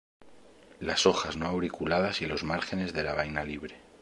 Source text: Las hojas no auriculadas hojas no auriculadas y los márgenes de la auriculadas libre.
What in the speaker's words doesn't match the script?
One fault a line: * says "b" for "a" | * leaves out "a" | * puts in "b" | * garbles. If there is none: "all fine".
* leaves out "hojas no auriculadas"
* says "vaina" for "auriculadas"